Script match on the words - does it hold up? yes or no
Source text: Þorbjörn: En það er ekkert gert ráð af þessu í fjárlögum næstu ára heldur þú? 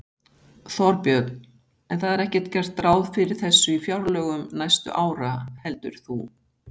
no